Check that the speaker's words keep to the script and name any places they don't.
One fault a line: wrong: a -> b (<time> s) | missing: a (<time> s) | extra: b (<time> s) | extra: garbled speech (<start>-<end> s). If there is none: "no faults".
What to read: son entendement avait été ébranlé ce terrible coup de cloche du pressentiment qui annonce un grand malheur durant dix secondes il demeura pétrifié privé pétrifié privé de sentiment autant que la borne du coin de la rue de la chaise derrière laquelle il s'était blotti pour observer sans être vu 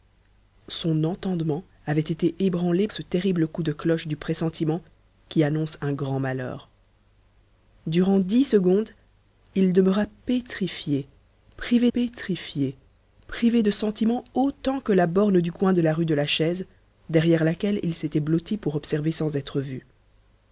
no faults